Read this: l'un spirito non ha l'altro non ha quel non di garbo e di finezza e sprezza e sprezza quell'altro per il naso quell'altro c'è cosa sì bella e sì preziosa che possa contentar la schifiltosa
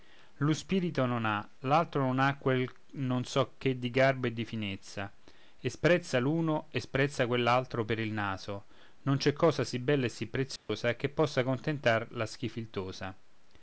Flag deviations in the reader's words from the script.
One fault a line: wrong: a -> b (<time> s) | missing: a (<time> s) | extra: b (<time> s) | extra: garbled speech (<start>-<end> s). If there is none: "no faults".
extra: so che (3.2 s)
extra: l'uno (6.2 s)
wrong: quell'altro -> non (9.0 s)